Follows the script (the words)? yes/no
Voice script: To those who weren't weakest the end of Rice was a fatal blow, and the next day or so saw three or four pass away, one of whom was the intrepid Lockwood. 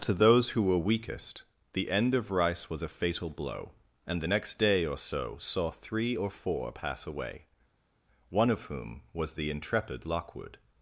no